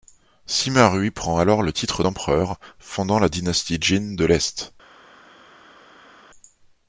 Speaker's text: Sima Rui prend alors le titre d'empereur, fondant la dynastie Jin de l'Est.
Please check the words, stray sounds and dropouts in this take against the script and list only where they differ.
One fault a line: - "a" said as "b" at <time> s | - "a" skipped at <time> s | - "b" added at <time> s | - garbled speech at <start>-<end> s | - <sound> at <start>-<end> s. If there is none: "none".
none